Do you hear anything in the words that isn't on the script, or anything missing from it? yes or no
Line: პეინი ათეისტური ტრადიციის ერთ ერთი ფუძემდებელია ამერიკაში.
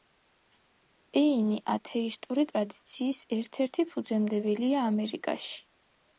no